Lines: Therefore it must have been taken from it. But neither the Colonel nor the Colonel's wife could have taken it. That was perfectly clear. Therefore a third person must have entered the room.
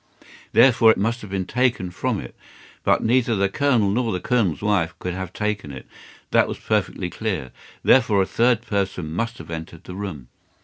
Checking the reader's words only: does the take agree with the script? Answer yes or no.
yes